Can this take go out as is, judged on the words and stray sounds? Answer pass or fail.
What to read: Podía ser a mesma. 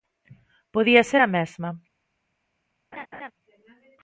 fail